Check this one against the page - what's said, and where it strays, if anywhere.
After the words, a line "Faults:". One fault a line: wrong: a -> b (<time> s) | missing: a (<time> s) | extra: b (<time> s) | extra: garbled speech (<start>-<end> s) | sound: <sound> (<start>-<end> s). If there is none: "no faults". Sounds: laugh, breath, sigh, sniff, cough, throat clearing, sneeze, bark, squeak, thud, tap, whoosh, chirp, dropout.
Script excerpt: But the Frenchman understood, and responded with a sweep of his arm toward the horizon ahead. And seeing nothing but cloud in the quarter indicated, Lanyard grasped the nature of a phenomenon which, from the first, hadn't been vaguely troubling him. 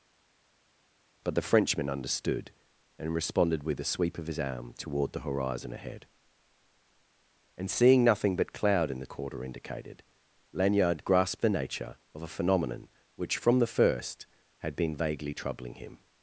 But the Frenchman understood, and responded with a sweep of his arm toward the horizon ahead. And seeing nothing but cloud in the quarter indicated, Lanyard grasped the nature of a phenomenon which, from the first, had been vaguely troubling him.
Faults:
wrong: hadn't -> had (14.6 s)